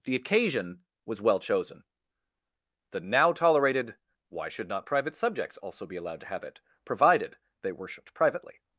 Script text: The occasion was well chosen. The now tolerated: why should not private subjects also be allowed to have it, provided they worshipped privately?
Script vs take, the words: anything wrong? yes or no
no